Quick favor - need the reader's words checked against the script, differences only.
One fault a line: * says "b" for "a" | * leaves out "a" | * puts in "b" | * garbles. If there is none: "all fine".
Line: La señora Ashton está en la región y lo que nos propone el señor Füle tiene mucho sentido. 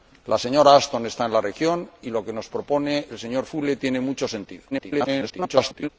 * garbles